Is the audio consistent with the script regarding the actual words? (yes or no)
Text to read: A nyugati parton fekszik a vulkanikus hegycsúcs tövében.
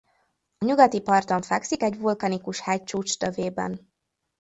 no